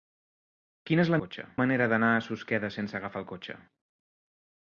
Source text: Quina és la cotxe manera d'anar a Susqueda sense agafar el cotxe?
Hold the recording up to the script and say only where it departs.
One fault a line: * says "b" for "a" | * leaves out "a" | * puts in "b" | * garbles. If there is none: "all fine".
all fine